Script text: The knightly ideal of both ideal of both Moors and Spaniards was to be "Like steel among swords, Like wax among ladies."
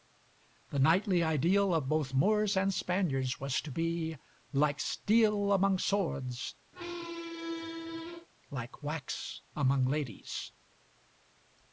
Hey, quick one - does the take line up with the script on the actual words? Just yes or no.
no